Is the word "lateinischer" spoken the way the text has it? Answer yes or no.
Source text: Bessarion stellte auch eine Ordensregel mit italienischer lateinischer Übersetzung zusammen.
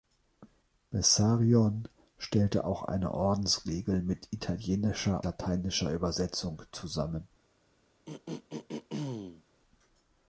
yes